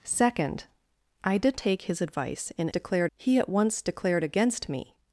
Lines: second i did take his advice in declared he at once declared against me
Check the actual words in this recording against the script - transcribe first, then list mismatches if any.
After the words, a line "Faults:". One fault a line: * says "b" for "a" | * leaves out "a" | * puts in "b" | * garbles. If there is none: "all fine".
second i did take his advice in declared he at once declared against me
Faults:
all fine